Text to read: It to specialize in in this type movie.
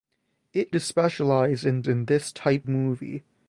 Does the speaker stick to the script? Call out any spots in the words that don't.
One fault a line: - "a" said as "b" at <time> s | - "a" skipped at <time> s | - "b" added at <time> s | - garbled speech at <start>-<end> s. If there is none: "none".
none